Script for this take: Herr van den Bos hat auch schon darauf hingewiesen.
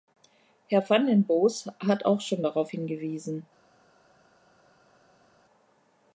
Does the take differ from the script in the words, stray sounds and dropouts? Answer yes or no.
no